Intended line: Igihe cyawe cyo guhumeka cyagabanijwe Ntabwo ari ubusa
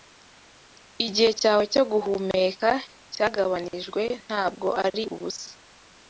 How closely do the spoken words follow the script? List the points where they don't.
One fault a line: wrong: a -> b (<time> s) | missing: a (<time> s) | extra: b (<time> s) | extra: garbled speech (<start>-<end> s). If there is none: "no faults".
no faults